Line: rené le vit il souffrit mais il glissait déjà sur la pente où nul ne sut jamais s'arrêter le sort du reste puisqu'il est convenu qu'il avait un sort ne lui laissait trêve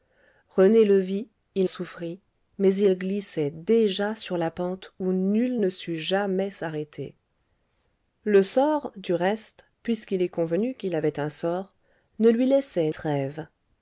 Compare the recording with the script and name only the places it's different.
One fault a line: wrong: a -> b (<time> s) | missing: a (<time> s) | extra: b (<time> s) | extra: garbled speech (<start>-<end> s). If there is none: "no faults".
no faults